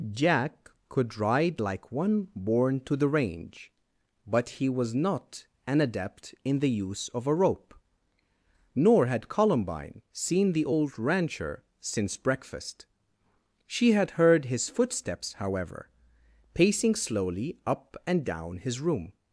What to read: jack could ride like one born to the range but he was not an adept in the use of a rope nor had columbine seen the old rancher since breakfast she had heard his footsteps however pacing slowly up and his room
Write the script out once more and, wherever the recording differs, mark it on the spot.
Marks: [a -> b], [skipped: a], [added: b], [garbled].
jack could ride like one born to the range but he was not an adept in the use of a rope nor had columbine seen the old rancher since breakfast she had heard his footsteps however pacing slowly up and [added: down] his room